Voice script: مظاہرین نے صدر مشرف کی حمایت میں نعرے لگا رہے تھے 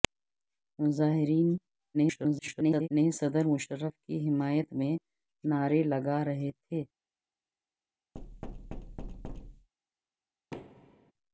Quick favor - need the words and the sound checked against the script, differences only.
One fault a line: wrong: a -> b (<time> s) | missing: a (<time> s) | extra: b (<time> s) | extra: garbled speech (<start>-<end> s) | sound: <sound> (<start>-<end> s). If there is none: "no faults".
extra: garbled speech (1.9-2.9 s)
sound: thud (8.1-9.7 s)
sound: thud (10.5-11.1 s)